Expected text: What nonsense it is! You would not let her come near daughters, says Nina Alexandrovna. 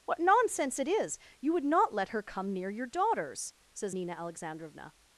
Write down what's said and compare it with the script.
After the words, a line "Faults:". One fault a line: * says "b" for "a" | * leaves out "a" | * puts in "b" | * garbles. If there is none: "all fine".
What nonsense it is! You would not let her come near your daughters, says Nina Alexandrovna.
Faults:
* puts in "your"